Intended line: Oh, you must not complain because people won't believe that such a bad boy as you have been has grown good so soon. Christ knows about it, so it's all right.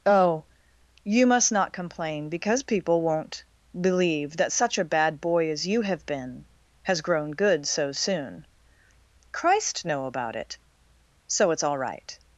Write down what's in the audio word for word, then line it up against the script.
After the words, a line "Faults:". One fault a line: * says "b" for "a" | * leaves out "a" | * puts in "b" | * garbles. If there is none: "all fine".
Oh, you must not complain because people won't believe that such a bad boy as you have been has grown good so soon. Christ know about it, so it's all right.
Faults:
* says "know" for "knows"